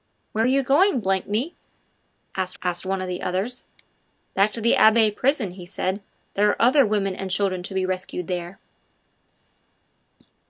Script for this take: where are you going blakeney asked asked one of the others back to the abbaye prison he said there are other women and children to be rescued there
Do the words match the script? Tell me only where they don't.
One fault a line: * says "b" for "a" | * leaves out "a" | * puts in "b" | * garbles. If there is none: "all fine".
all fine